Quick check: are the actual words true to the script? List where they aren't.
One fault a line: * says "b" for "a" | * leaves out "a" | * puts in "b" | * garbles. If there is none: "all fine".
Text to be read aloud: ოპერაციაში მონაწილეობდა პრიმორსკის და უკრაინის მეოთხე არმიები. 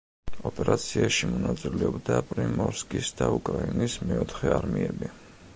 all fine